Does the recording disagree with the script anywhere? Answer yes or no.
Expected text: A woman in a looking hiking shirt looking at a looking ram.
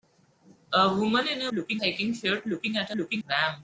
no